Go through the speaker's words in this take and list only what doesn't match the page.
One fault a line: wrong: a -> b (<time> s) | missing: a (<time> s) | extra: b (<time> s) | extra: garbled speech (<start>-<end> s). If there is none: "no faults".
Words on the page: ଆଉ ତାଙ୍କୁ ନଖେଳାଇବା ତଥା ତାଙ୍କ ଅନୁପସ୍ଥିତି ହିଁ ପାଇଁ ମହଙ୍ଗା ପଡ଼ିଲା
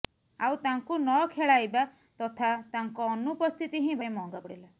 no faults